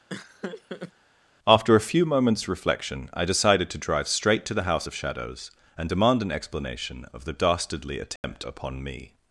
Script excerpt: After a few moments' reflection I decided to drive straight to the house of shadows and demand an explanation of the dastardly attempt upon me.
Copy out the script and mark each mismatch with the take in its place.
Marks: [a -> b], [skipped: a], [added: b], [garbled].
After a few moments' reflection I decided to drive straight to the house of shadows and demand an explanation of the dastardly attempt upon me.